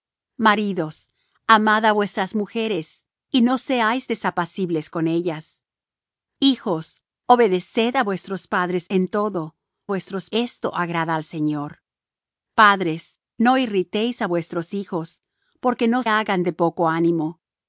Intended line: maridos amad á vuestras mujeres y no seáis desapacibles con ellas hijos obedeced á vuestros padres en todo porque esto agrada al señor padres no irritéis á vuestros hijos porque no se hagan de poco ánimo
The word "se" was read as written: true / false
false